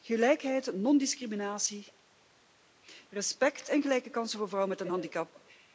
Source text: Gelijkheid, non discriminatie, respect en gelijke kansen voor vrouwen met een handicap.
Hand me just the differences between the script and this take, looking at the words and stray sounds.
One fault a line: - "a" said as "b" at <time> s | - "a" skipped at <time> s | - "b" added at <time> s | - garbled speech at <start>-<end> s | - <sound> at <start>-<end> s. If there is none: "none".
none